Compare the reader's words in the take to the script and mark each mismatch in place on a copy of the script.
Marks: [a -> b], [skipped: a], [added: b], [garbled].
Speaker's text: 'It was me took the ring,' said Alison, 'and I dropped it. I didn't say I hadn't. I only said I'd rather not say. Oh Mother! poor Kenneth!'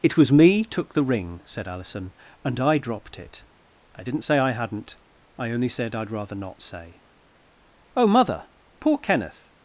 'It was me took the ring,' said Alison, 'and I dropped it. I didn't say I hadn't. I only said I'd rather not say. Oh Mother! poor Kenneth!'